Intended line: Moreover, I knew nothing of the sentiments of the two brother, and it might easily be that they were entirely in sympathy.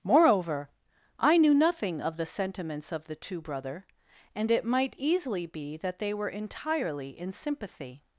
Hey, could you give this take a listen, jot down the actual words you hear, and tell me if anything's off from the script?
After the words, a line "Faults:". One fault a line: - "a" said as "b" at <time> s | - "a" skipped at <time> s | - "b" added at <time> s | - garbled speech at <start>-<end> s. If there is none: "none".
Moreover, I knew nothing of the sentiments of the two brother, and it might easily be that they were entirely in sympathy.
Faults:
none